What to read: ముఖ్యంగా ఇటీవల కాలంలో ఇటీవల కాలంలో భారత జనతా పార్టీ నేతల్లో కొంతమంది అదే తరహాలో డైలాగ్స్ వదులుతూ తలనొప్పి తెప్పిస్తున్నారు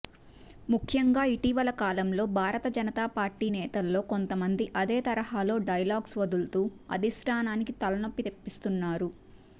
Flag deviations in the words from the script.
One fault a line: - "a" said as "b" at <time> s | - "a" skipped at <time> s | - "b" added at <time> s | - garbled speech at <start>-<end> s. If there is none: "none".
- "ఇటీవల కాలంలో" skipped at 2.2 s
- "అధిష్టానానికి" added at 7.0 s